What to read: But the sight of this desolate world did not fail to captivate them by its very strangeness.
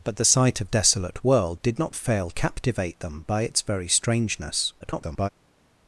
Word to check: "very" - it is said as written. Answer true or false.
true